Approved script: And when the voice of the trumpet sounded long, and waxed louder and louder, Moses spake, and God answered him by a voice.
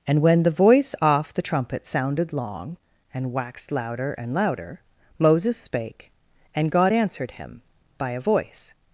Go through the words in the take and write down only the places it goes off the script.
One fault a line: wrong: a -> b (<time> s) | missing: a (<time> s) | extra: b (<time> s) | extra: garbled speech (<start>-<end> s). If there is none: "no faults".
wrong: of -> off (1.0 s)